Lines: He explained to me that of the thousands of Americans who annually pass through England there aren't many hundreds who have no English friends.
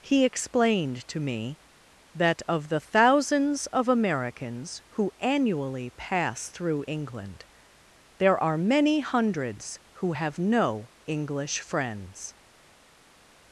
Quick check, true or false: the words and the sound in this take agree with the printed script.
false